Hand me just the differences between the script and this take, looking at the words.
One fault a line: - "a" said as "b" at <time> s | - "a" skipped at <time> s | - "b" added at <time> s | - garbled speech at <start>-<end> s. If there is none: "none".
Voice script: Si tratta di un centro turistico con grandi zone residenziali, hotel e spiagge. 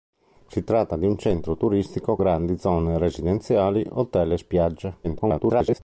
- "con" skipped at 2.2 s
- garbled speech at 5.0-5.8 s